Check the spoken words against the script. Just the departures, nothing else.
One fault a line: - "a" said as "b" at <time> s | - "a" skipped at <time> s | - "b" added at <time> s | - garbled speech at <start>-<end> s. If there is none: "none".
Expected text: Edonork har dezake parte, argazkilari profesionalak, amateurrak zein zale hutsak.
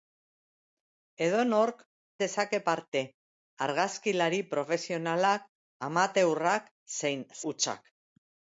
- "har" skipped at 1.8 s
- "zale" skipped at 7.3 s